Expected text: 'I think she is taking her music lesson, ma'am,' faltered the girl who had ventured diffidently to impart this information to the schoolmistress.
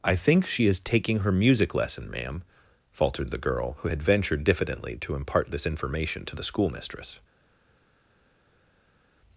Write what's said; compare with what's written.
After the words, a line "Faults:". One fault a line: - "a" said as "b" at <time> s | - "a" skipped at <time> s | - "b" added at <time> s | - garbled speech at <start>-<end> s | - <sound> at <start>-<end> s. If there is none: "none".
'I think she is taking her music lesson, ma'am,' faltered the girl who had ventured diffidently to impart this information to the schoolmistress.
Faults:
none